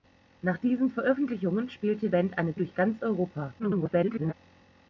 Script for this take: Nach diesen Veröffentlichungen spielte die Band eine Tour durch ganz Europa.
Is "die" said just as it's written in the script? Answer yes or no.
no